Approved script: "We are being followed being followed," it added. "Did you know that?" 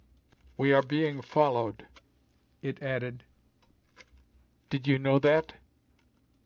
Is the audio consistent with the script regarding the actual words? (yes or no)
no